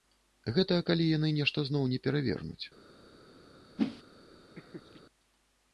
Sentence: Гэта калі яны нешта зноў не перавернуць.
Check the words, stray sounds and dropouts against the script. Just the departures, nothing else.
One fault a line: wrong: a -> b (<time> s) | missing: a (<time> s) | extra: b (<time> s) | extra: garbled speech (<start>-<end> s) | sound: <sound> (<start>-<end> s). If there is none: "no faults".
sound: whoosh (3.8-4.0 s)
sound: laugh (4.6-5.0 s)